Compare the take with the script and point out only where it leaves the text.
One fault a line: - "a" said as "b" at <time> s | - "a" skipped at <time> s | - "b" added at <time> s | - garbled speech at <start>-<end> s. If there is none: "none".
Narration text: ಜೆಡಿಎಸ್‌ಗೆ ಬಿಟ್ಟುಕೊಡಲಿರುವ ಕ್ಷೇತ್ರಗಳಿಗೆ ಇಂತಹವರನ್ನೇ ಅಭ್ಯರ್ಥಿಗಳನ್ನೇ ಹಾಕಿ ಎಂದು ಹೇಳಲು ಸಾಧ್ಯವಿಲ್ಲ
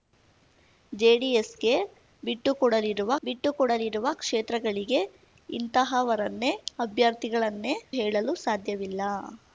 - "ಬಿಟ್ಟುಕೊಡಲಿರುವ" added at 3.2 s
- "ಹಾಕಿ ಎಂದು" skipped at 7.8 s